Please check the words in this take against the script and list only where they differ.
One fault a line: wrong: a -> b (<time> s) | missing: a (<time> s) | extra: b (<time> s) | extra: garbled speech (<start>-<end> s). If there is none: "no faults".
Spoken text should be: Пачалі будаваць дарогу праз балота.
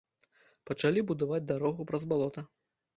no faults